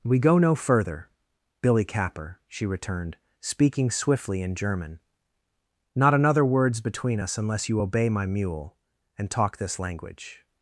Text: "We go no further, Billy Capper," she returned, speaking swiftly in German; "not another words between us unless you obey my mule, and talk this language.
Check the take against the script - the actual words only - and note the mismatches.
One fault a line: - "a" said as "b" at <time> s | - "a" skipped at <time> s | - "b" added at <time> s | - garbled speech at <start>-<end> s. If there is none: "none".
none